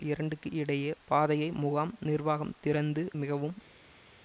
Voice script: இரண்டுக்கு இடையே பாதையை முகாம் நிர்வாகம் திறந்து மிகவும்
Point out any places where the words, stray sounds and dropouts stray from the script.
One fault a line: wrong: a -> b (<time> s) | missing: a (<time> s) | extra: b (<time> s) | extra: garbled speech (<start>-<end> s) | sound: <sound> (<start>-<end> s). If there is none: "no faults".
no faults